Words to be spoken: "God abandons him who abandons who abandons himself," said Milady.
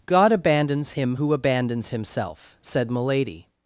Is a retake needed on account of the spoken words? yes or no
yes